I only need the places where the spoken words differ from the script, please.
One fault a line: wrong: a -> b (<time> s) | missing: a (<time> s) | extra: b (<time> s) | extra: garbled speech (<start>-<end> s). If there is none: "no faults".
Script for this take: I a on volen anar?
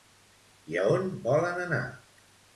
no faults